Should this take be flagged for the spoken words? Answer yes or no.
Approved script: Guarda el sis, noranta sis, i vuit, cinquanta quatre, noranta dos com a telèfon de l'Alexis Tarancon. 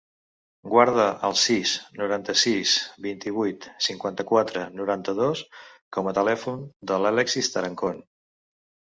yes